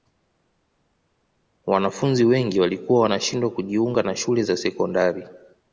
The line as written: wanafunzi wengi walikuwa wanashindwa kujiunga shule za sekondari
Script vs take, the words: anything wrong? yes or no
yes